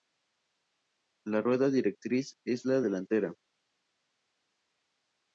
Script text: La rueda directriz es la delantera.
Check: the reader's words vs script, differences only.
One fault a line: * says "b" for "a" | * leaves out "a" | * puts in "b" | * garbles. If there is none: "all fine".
all fine